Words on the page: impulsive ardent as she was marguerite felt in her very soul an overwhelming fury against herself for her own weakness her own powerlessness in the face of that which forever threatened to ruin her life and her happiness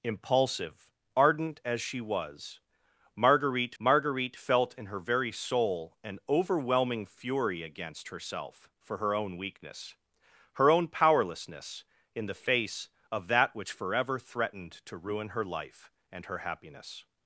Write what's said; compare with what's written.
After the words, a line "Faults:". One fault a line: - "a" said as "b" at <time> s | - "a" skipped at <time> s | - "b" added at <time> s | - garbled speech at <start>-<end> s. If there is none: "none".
impulsive ardent as she was marguerite marguerite felt in her very soul an overwhelming fury against herself for her own weakness her own powerlessness in the face of that which forever threatened to ruin her life and her happiness
Faults:
- "marguerite" added at 3.8 s